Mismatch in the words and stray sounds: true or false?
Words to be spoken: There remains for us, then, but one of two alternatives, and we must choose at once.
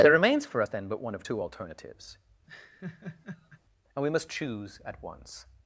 true